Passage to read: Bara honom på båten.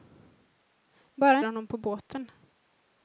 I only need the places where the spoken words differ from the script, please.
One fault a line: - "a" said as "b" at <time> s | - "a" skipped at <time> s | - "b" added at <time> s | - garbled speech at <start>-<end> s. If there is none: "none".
none